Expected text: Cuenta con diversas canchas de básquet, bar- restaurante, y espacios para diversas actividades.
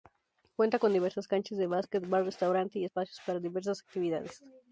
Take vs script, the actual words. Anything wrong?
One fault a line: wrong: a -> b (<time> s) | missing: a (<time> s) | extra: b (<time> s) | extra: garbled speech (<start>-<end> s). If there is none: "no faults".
no faults